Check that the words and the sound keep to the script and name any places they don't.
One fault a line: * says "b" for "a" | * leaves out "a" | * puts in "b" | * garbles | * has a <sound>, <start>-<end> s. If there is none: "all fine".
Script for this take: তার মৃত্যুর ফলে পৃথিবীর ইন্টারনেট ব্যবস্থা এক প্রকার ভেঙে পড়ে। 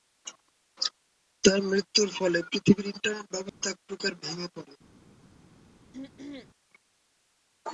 * has a dropout, 3.5-3.6 s
* has a throat clearing, 5.9-6.5 s